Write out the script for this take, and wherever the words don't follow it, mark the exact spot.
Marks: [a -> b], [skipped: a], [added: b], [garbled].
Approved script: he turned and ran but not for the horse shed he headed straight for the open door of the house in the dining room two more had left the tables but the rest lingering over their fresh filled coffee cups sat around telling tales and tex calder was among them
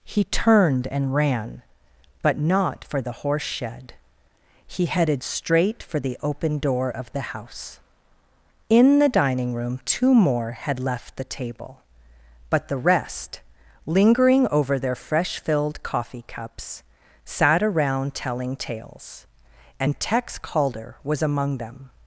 he turned and ran but not for the horse shed he headed straight for the open door of the house in the dining room two more had left the [tables -> table] but the rest lingering over their fresh filled coffee cups sat around telling tales and tex calder was among them